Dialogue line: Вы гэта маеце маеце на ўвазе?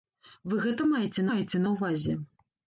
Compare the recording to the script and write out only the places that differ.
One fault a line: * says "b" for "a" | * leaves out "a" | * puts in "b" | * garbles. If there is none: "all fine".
all fine